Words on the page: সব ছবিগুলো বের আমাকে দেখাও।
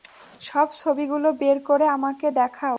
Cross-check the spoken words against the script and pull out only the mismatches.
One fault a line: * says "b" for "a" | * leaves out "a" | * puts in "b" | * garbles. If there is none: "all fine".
* puts in "করে"